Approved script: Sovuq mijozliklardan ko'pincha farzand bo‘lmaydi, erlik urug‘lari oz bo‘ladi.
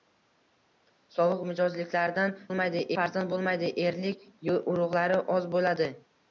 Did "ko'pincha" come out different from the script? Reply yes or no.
yes